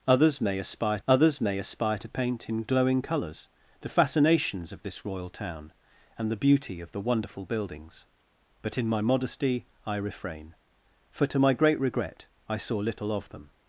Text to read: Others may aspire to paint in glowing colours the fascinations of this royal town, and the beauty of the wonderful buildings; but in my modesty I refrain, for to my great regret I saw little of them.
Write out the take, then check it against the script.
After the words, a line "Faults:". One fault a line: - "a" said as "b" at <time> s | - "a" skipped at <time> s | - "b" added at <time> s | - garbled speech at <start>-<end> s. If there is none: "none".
Others may aspire others may aspire to paint in glowing colours the fascinations of this royal town, and the beauty of the wonderful buildings; but in my modesty I refrain, for to my great regret I saw little of them.
Faults:
- "others may aspire" added at 1.1 s